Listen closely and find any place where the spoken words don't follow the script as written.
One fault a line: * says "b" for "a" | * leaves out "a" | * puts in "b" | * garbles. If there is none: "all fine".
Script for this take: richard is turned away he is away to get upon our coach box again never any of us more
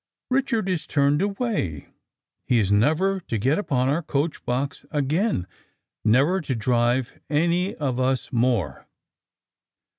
* says "never" for "away"
* puts in "to drive"